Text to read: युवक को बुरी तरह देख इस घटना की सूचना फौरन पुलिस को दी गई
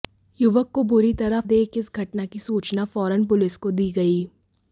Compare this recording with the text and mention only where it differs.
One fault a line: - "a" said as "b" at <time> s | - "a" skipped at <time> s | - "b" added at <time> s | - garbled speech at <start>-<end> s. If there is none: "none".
none